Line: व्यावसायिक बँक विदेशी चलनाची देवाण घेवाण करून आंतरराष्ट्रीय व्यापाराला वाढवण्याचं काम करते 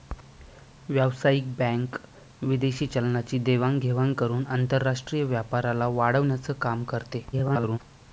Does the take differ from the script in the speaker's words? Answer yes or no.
yes